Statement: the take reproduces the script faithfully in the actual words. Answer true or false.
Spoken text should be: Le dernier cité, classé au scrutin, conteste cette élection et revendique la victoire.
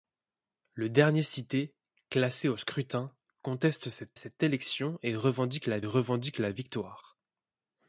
false